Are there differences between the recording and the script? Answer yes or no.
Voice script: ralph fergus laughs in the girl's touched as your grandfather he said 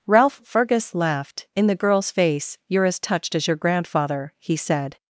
yes